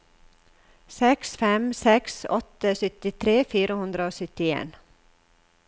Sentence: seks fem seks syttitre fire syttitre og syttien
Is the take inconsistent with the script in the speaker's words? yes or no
yes